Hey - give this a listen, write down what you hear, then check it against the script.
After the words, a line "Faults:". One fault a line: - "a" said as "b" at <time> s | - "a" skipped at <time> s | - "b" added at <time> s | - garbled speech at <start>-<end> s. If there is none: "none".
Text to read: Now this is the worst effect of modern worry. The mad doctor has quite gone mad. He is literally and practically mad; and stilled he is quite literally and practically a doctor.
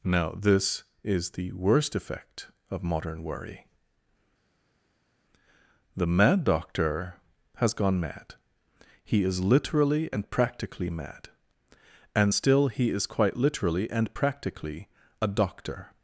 Now this is the worst effect of modern worry. The mad doctor has gone mad. He is literally and practically mad; and still he is quite literally and practically a doctor.
Faults:
- "quite" skipped at 7.7 s
- "stilled" said as "still" at 12.3 s